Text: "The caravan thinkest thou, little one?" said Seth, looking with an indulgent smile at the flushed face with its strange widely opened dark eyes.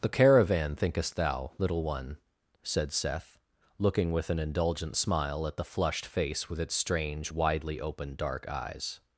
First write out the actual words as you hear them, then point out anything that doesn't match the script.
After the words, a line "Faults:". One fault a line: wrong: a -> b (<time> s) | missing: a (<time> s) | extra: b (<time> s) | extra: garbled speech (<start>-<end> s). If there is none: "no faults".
"The caravan thinkest thou, little one?" said Seth, looking with an indulgent smile at the flushed face with its strange widely opened dark eyes.
Faults:
no faults